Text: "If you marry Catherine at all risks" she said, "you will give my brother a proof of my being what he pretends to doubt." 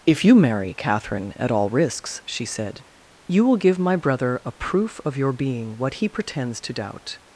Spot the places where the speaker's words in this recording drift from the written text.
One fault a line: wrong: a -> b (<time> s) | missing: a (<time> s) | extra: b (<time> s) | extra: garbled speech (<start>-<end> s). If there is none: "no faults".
wrong: my -> your (5.2 s)